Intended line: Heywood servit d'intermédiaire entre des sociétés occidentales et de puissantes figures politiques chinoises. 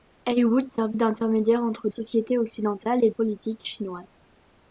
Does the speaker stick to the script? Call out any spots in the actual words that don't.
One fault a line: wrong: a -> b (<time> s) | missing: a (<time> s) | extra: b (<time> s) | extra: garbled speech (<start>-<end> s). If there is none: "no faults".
missing: des (1.9 s)
missing: de puissantes figures (3.1 s)